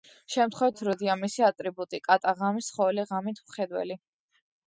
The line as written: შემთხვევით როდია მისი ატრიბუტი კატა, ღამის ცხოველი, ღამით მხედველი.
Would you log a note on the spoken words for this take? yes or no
no